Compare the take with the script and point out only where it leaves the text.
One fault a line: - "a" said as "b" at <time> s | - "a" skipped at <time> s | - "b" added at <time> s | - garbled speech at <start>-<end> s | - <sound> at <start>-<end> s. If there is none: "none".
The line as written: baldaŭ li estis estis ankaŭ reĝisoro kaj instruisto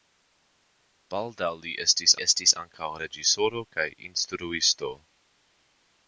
none